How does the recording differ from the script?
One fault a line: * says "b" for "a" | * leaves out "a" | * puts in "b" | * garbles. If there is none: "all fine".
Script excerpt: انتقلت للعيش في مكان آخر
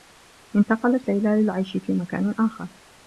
* puts in "ليلى"